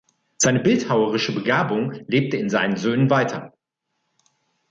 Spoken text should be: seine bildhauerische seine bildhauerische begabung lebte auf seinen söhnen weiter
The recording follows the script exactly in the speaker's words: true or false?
false